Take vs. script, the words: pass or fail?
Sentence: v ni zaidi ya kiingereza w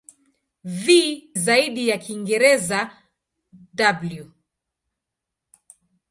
fail